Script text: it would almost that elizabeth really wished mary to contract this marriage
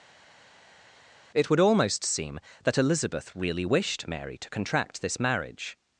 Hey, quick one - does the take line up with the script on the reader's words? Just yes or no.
no